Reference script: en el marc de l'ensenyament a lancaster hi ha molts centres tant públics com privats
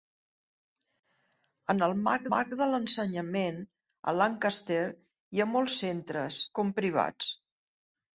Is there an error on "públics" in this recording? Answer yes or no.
yes